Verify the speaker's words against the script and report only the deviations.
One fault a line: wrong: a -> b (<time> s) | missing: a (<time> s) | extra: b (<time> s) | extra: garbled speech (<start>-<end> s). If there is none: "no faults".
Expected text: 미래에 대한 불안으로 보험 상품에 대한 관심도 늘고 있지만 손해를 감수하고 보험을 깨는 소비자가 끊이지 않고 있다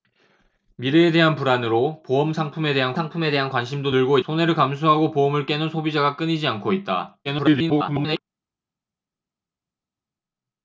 extra: 상품에 대한 (2.9 s)
missing: 있지만 (4.2 s)
extra: garbled speech (7.2-8.2 s)